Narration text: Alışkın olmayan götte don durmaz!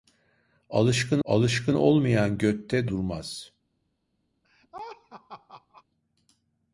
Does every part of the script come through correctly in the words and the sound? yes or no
no